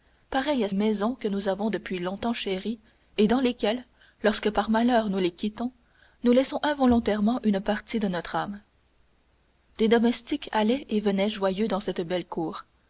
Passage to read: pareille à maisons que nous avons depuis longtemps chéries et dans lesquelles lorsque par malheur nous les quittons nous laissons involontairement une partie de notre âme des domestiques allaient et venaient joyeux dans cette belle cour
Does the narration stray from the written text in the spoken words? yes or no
no